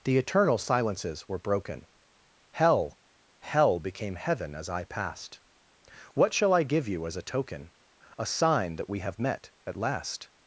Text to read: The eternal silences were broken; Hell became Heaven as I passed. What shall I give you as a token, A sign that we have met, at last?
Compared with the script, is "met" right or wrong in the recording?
right